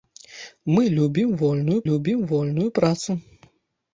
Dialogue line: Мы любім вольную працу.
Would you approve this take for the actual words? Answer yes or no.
no